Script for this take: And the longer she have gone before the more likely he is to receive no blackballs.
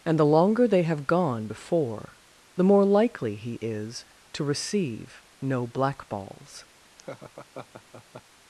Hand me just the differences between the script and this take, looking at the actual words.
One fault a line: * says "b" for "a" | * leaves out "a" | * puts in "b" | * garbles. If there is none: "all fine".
* says "they" for "she"